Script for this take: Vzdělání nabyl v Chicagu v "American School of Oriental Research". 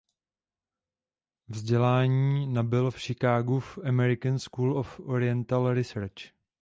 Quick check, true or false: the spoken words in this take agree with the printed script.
true